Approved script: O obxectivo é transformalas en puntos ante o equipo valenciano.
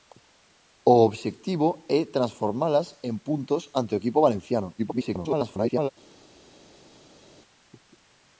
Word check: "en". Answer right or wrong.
right